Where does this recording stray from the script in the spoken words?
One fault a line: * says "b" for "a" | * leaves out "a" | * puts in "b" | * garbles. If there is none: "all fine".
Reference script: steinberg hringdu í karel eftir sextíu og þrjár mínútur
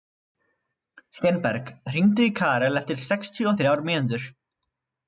all fine